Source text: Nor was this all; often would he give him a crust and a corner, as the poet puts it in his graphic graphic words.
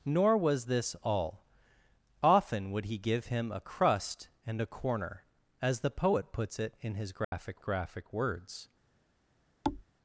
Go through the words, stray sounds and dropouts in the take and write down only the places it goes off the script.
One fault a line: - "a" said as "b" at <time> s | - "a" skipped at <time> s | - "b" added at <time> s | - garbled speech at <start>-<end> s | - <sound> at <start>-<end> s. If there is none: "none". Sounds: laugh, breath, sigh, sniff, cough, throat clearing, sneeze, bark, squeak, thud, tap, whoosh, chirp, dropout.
- dropout at 7.2-7.3 s
- thud at 9.6-9.8 s